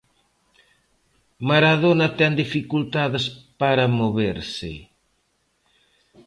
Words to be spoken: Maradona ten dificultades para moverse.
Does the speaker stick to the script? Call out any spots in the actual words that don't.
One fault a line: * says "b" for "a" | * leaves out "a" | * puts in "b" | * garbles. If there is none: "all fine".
all fine